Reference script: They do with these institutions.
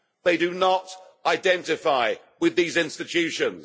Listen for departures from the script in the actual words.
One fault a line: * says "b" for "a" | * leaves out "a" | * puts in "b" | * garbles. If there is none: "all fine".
* puts in "not identify"